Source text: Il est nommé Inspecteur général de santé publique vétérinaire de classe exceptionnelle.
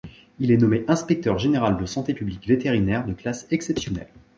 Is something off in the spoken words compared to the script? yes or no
no